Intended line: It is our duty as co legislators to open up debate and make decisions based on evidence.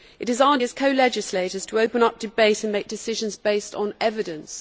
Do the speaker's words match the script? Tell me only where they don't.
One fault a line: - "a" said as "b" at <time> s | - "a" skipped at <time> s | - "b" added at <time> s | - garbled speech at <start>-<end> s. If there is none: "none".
- "duty" skipped at 0.6 s